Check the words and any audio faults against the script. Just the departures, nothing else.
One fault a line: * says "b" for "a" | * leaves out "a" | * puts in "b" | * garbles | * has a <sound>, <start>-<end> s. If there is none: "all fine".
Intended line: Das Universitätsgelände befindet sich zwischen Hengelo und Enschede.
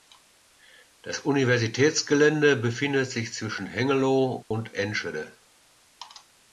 * has a dropout, 4.4-4.5 s